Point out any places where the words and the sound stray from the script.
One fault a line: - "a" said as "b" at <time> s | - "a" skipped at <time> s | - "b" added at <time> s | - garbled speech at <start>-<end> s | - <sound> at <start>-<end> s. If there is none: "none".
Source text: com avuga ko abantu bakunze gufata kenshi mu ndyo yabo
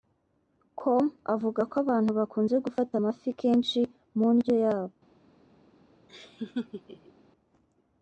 - "amafi" added at 3.0 s
- laugh at 6.1-7.1 s